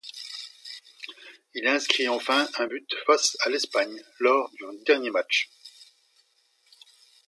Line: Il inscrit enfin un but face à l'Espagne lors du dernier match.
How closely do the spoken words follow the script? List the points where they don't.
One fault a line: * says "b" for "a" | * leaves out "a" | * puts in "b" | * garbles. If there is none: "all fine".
all fine